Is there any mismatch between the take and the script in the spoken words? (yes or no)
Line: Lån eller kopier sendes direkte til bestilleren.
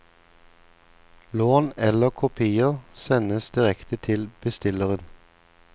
no